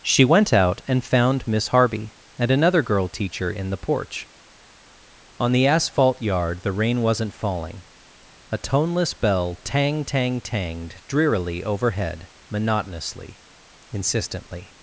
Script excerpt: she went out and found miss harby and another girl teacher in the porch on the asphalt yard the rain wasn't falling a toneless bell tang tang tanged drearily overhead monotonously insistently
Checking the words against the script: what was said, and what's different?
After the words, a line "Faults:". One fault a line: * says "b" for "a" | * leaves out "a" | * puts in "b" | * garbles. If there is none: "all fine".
she went out and found miss harby and another girl teacher in the porch on the asphalt yard the rain wasn't falling a toneless bell tang tang tanged drearily overhead monotonously insistently
Faults:
all fine